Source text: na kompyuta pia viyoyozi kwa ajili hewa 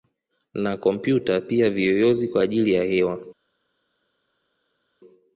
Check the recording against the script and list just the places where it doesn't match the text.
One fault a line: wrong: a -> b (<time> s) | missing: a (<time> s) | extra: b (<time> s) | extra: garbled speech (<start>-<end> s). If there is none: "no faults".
extra: ya (2.7 s)